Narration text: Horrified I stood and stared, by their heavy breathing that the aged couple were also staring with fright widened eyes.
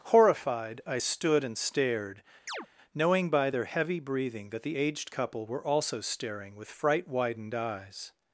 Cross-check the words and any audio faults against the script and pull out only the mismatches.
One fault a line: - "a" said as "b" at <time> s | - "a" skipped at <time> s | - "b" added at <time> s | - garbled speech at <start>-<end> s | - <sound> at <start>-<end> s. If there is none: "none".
- chirp at 2.5-2.7 s
- "knowing" added at 2.9 s